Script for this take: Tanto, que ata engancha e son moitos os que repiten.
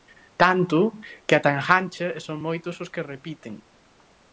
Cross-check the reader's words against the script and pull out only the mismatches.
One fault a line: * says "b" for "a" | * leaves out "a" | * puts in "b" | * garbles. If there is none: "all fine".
all fine